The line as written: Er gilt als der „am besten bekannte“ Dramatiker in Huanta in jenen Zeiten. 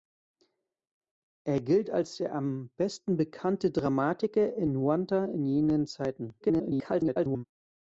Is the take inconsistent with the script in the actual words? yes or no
yes